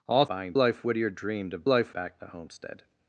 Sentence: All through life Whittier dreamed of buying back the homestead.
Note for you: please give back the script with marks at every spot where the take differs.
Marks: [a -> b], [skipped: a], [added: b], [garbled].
All [through -> buying] life Whittier dreamed of [buying -> life] back the homestead.